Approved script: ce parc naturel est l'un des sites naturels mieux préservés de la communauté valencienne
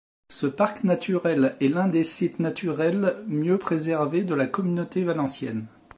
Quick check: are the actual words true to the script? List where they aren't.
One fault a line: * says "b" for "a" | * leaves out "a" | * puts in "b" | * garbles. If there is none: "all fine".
all fine